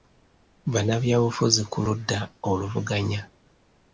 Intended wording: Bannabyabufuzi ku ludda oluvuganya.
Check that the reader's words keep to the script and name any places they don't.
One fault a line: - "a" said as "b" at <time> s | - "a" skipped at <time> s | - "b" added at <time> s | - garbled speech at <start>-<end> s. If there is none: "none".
none